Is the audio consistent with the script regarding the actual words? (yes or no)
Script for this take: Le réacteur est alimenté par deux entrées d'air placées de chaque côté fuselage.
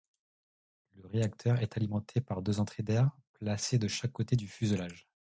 no